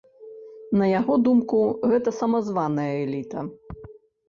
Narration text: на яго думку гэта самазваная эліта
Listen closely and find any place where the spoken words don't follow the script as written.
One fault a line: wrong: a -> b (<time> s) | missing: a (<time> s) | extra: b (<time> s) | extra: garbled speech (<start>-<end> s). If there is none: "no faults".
no faults